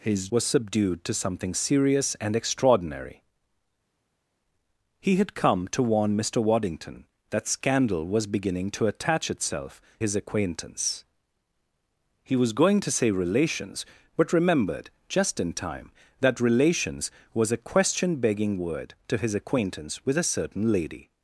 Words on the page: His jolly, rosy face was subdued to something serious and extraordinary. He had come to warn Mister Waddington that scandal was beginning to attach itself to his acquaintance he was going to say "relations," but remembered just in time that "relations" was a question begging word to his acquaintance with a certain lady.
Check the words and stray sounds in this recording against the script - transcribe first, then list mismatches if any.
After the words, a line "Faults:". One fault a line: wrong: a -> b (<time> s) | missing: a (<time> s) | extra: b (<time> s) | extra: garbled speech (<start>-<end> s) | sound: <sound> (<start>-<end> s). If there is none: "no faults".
His was subdued to something serious and extraordinary. He had come to warn Mister Waddington that scandal was beginning to attach itself his acquaintance he was going to say "relations," but remembered just in time that "relations" was a question begging word to his acquaintance with a certain lady.
Faults:
missing: jolly rosy face (0.3 s)
missing: to (9.8 s)